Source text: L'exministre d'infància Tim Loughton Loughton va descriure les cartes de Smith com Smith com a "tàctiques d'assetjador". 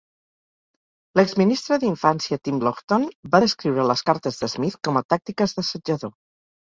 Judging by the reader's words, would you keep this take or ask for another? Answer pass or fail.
fail